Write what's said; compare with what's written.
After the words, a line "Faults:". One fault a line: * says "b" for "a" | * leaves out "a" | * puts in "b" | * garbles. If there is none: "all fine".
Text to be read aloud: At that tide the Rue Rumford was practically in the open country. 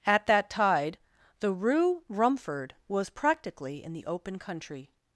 At that tide the Rue Rumford was practically in the open country.
Faults:
all fine